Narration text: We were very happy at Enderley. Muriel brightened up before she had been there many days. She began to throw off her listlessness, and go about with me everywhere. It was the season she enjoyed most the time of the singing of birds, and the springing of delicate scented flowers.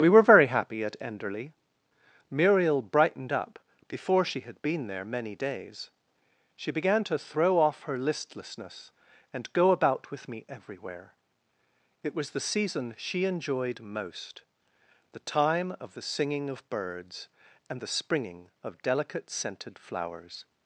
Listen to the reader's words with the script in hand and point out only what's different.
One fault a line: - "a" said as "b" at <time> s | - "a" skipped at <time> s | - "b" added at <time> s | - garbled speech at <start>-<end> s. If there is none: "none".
none